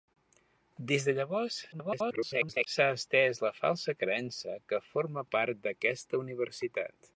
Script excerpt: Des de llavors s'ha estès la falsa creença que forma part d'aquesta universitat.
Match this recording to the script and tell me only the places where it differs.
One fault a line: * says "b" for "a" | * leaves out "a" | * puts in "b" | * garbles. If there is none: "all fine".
* garbles